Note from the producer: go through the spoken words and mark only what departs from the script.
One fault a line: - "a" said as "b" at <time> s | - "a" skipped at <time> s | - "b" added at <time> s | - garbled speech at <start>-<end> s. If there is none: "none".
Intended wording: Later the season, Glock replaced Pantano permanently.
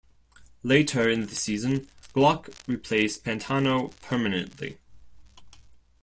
- "in" added at 1.1 s